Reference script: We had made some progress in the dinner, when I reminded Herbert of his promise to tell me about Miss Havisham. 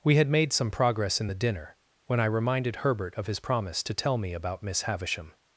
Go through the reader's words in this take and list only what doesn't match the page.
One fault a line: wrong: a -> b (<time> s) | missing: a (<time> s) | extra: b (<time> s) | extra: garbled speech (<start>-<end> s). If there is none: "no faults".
no faults